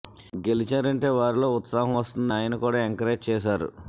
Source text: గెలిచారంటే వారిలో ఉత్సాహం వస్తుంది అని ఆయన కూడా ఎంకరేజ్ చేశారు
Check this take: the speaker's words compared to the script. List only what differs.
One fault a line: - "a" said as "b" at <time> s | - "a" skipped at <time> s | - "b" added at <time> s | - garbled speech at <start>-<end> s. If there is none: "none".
- "అని" skipped at 2.3 s